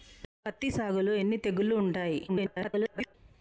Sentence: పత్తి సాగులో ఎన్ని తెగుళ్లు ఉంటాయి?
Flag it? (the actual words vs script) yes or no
yes